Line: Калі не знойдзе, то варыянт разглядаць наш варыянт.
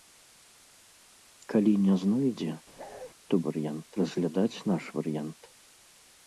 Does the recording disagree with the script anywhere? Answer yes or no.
no